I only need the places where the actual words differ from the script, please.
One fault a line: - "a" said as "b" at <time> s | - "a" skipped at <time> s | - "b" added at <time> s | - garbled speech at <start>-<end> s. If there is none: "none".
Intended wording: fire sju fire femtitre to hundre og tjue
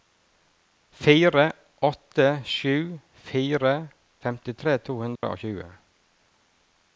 - "åtte" added at 1.9 s